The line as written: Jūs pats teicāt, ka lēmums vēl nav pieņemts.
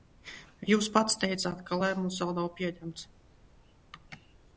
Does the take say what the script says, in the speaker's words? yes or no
yes